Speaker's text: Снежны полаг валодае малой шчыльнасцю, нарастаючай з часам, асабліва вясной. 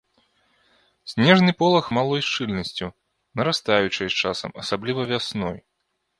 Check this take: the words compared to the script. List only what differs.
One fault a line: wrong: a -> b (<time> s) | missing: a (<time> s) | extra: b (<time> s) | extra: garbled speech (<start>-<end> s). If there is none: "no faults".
missing: валодае (1.9 s)